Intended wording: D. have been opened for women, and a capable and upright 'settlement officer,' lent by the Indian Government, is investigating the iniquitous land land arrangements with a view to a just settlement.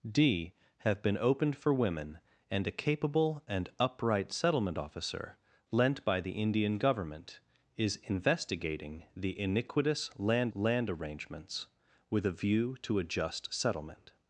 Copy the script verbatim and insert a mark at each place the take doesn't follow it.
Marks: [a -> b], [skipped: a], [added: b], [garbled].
D. have been opened for women, and a capable and upright 'settlement officer,' lent by the Indian Government, is investigating the iniquitous land land arrangements with a view to a just settlement.